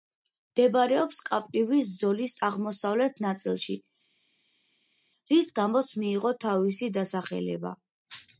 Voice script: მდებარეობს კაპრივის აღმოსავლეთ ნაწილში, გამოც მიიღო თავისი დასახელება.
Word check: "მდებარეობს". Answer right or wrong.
right